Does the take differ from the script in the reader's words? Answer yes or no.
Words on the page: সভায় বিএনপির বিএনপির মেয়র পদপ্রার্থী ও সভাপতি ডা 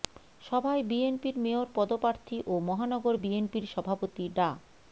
yes